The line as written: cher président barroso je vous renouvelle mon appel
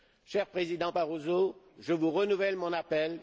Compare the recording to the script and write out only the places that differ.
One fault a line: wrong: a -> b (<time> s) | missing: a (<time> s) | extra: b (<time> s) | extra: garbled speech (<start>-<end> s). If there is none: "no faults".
no faults